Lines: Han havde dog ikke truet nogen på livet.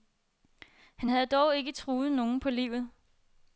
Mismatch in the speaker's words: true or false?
false